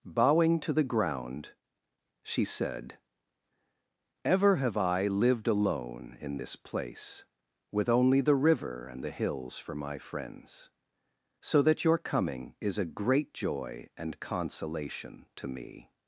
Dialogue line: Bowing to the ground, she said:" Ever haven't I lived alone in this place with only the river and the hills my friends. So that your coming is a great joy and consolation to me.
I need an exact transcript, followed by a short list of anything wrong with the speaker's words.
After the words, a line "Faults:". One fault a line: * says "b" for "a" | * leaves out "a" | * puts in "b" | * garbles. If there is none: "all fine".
Bowing to the ground, she said:" Ever have I lived alone in this place with only the river and the hills for my friends. So that your coming is a great joy and consolation to me.
Faults:
* says "have" for "haven't"
* puts in "for"